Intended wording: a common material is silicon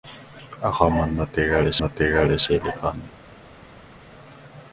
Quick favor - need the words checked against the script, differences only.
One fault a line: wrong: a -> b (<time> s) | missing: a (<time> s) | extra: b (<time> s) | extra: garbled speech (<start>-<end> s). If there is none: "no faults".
extra: material is (1.8 s)